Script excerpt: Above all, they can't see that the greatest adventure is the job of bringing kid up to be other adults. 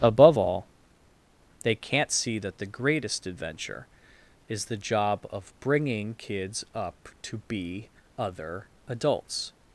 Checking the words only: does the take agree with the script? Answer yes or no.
no